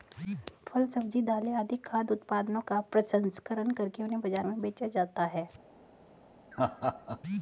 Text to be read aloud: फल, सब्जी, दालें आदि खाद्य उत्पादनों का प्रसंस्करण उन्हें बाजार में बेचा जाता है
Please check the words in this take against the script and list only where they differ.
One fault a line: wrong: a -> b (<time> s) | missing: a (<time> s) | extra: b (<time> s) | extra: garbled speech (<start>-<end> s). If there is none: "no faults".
extra: करके (3.7 s)